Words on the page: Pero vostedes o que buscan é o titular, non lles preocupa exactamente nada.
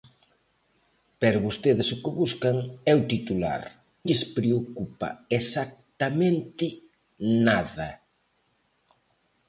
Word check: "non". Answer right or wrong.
wrong